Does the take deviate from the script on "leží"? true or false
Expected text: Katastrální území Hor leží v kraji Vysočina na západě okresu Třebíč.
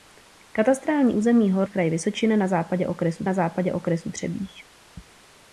true